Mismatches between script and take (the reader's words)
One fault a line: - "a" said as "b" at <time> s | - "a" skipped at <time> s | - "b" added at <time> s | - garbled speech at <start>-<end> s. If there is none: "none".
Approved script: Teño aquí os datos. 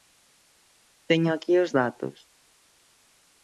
none